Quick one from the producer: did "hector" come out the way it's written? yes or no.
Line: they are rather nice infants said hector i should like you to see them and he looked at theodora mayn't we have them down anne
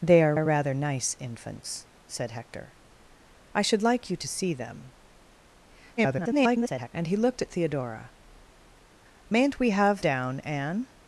yes